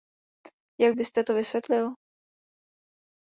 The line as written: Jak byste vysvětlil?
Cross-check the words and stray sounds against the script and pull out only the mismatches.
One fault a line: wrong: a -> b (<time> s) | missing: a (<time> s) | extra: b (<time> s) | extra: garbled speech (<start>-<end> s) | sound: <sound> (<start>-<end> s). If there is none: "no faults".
extra: to (1.2 s)